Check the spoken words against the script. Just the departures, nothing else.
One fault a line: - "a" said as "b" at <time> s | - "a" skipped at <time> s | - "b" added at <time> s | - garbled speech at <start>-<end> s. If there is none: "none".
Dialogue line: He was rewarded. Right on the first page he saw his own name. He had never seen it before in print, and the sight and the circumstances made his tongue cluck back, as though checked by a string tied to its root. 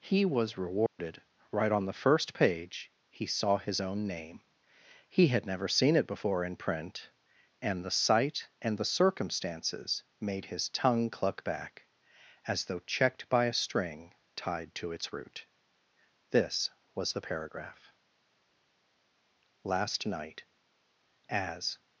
- "This was the paragraph Last night as" added at 16.3 s